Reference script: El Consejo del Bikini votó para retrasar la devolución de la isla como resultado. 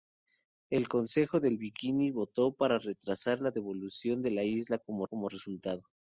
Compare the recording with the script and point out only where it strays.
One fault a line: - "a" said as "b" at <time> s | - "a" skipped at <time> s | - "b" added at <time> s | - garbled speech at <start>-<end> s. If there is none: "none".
- "como" added at 5.0 s